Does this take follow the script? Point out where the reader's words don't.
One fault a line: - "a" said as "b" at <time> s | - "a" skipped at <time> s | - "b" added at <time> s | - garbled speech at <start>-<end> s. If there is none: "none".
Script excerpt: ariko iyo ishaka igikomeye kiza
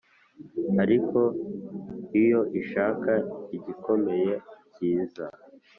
none